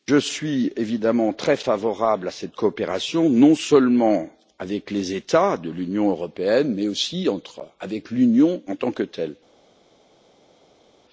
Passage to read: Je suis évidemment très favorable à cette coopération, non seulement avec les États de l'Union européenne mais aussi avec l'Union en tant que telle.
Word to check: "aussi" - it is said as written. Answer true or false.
true